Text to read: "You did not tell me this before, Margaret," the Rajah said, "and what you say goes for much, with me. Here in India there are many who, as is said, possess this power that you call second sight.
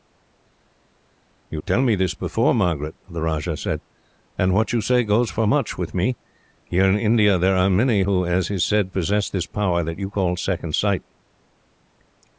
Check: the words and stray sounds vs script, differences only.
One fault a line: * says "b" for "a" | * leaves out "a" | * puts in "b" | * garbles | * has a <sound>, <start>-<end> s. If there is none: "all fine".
* leaves out "did not"